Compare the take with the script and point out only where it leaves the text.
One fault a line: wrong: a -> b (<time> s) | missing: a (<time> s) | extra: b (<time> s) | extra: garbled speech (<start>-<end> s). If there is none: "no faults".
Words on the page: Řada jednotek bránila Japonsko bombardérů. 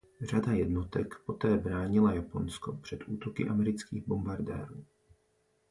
extra: poté (1.2 s)
extra: před útoky amerických (2.7 s)